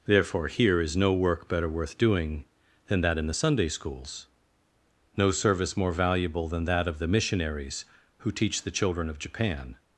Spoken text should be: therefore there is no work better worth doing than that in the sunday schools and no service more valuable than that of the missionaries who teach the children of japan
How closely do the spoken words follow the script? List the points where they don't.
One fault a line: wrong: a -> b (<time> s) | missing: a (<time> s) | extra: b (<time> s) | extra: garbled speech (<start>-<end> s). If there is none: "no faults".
wrong: there -> here (0.5 s)
missing: and (4.3 s)